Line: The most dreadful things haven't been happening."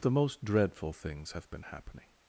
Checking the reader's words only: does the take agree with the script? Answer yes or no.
no